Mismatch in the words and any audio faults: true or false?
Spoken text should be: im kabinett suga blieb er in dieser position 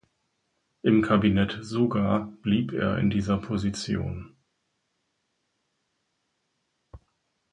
false